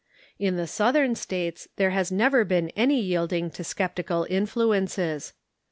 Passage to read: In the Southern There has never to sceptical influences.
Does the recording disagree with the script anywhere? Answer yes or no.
yes